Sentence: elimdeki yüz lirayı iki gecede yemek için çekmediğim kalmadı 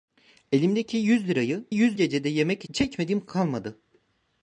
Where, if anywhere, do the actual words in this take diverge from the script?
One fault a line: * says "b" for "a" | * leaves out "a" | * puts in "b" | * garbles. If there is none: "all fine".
* says "yüz" for "iki"
* leaves out "için"